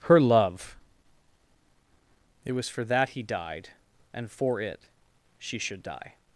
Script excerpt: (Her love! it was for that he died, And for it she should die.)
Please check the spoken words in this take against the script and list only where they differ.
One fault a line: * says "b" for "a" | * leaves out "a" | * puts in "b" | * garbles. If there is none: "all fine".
all fine